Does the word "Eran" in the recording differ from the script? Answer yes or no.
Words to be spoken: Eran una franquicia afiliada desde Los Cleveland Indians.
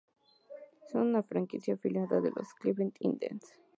yes